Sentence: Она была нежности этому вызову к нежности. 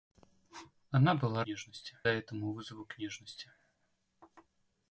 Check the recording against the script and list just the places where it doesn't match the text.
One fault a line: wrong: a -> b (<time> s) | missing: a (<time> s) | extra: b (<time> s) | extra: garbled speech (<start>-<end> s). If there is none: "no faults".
no faults